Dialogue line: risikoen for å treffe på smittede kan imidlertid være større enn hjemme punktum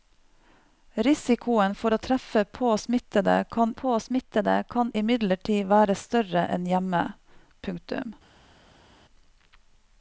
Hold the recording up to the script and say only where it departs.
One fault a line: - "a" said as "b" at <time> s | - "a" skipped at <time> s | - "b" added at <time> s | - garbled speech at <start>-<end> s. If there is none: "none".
- "på smittede kan" added at 3.8 s